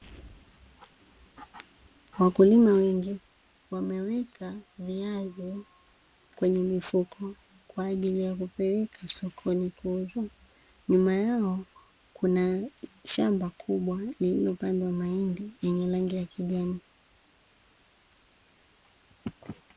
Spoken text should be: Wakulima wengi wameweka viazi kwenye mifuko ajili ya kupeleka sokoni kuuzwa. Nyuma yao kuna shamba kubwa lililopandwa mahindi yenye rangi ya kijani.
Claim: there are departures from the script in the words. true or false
true